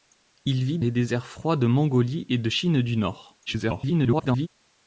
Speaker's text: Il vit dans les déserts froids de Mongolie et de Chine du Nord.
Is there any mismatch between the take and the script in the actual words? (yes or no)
yes